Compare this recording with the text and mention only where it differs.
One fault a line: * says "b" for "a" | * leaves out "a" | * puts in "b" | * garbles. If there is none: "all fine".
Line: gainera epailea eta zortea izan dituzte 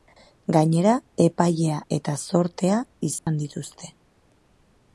all fine